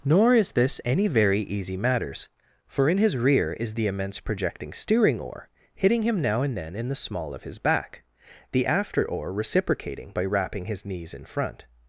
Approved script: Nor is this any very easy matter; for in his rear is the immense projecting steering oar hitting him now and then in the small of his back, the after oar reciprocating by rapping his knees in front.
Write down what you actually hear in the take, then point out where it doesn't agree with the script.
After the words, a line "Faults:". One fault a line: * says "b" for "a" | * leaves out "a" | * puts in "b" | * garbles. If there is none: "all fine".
Nor is this any very easy matters; for in his rear is the immense projecting steering oar hitting him now and then in the small of his back, the after oar reciprocating by rapping his knees in front.
Faults:
* says "matters" for "matter"